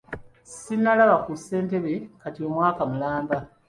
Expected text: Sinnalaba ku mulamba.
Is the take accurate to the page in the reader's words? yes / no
no